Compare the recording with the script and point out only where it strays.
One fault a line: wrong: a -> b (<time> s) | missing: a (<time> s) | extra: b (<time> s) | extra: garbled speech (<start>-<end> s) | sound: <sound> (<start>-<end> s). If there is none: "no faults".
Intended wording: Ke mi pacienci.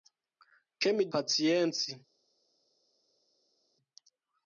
no faults